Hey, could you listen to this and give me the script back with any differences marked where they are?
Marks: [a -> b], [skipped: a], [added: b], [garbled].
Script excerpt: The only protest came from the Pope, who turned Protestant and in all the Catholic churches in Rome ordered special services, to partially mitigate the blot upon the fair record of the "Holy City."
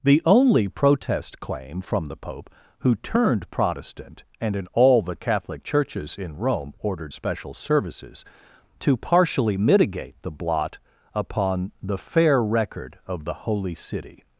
The only protest [came -> claim] from the Pope, who turned Protestant and in all the Catholic churches in Rome ordered special services, to partially mitigate the blot upon the fair record of the "Holy City."